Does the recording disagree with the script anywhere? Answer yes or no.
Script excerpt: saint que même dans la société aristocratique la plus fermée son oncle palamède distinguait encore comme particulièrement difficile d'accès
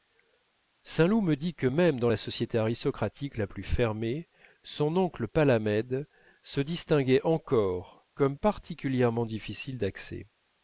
yes